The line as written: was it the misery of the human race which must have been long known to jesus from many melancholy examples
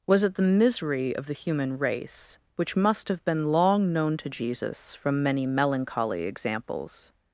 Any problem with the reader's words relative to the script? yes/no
no